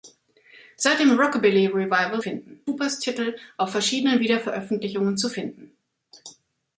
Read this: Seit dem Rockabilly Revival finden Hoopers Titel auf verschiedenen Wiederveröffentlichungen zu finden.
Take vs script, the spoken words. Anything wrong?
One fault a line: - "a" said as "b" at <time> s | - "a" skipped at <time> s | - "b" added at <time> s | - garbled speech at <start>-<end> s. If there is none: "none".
none